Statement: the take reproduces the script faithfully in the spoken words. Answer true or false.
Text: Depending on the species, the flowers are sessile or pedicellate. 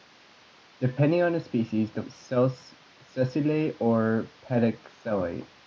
false